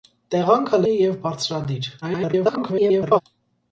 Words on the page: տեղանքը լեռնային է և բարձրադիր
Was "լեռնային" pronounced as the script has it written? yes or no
no